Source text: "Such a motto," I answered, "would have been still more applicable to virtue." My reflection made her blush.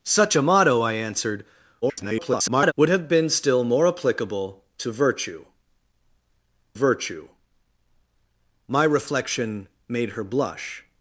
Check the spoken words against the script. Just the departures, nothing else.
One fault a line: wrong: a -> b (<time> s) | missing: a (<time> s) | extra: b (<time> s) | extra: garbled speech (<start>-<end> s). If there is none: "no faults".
extra: garbled speech (1.8-2.7 s)
extra: virtue (6.7 s)